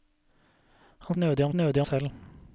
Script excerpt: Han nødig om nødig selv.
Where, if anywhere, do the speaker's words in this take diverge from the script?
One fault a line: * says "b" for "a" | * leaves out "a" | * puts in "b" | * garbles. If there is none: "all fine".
all fine